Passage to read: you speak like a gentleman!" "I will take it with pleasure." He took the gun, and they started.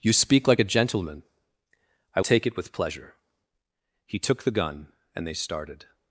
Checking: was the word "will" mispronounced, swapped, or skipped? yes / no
yes